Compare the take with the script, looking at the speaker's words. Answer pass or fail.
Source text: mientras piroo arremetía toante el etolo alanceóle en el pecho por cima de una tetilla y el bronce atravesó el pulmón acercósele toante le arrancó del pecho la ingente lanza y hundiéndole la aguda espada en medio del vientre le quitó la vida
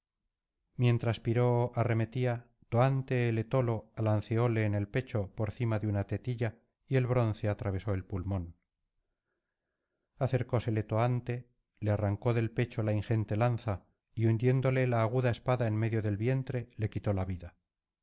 pass